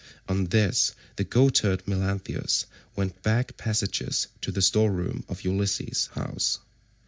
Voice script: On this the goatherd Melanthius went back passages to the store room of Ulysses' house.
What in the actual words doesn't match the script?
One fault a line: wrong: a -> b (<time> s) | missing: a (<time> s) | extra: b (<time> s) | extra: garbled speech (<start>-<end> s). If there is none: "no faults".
no faults